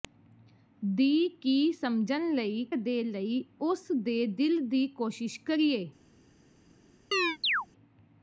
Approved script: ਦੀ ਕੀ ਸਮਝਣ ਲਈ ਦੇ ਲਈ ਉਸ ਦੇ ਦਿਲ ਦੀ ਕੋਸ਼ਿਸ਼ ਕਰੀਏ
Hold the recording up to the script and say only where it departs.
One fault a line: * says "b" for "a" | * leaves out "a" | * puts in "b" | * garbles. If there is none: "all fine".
all fine